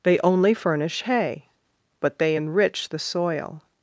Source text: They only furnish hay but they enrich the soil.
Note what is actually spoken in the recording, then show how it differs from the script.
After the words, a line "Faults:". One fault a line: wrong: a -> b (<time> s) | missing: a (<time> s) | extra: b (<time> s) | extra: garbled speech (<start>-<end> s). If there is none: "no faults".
They only furnish hay but they enrich the soil.
Faults:
no faults